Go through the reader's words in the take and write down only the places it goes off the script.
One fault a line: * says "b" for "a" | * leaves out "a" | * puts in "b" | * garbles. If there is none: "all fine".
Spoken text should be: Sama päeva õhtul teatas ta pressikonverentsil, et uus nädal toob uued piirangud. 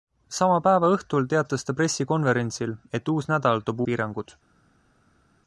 * leaves out "uued"